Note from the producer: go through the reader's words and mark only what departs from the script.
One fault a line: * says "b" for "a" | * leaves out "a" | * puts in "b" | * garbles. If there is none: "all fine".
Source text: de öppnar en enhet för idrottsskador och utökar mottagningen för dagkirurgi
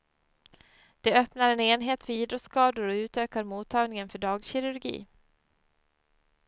all fine